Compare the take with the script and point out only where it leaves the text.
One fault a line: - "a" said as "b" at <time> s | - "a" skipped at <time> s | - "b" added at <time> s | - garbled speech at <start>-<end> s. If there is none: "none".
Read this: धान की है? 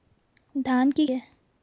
none